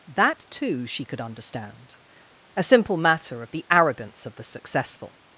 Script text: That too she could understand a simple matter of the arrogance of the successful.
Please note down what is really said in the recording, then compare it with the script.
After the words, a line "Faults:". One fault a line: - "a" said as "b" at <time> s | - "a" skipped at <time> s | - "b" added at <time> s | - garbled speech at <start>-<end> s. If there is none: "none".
That too she could understand a simple matter of the arrogance of the successful.
Faults:
none